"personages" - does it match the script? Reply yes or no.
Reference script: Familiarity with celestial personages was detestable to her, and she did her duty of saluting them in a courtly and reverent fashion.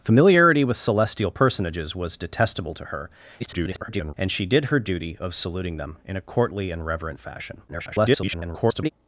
yes